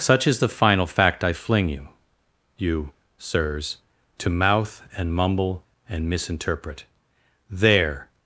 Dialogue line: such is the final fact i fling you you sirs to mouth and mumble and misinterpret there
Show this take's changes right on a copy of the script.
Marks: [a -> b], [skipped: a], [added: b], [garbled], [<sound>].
such is the final fact i fling you you sirs to mouth and mumble and misinterpret there